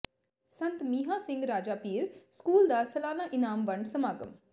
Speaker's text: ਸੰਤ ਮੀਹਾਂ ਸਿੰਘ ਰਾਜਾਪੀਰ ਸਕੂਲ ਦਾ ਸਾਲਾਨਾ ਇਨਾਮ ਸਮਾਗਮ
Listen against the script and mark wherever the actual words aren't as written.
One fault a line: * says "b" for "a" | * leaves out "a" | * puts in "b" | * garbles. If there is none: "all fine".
* puts in "ਵੰਡ"